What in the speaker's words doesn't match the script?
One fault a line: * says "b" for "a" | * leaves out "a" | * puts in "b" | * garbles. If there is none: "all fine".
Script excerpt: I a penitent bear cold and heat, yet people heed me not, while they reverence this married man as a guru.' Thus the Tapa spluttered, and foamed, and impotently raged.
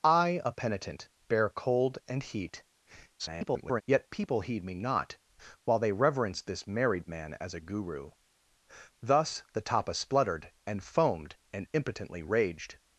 * garbles